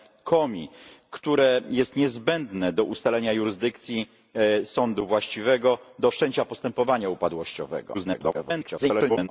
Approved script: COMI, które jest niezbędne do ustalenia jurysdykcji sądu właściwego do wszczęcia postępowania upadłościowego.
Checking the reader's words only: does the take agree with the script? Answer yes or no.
no